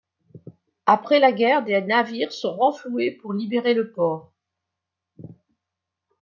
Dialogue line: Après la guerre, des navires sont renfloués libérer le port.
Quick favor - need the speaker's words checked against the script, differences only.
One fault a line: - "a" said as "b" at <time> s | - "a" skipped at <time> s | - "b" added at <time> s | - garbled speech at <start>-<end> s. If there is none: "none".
- "pour" added at 3.1 s